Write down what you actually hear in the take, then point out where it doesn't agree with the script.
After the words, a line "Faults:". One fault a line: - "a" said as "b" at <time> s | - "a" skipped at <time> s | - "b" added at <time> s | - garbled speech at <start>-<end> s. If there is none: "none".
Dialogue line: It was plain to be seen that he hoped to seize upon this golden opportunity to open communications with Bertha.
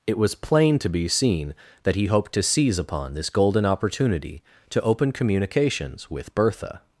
It was plain to be seen that he hoped to seize upon this golden opportunity to open communications with Bertha.
Faults:
none